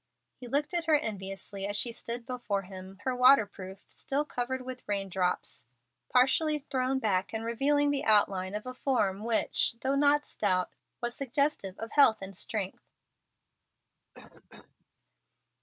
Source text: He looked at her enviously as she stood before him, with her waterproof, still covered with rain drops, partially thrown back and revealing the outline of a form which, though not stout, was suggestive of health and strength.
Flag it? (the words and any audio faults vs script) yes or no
yes